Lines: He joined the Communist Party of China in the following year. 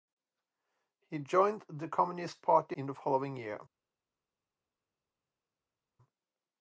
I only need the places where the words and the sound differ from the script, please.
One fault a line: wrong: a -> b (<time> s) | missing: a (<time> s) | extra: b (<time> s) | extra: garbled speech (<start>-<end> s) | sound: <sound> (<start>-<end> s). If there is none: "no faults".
missing: of China (2.8 s)